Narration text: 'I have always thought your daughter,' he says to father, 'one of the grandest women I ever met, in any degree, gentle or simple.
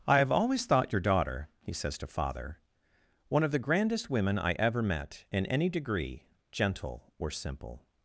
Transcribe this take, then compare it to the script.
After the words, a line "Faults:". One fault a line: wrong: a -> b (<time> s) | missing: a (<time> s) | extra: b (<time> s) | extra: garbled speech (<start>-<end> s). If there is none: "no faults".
'I have always thought your daughter,' he says to father, 'one of the grandest women I ever met, in any degree, gentle or simple.
Faults:
no faults